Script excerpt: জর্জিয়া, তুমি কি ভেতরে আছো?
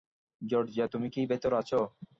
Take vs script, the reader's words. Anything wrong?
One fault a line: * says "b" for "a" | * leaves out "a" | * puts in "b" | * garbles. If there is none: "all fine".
all fine